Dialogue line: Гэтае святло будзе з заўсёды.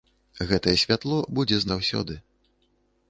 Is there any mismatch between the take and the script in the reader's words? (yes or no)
no